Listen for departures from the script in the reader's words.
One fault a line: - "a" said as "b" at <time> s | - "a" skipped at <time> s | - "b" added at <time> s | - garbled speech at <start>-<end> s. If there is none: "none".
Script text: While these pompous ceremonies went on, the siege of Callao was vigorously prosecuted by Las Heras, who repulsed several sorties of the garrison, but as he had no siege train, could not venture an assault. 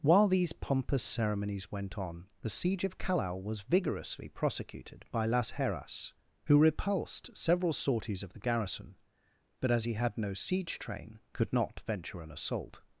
none